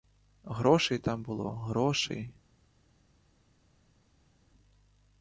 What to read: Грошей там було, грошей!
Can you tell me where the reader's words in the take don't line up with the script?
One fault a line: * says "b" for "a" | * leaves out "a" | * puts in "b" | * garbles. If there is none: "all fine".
all fine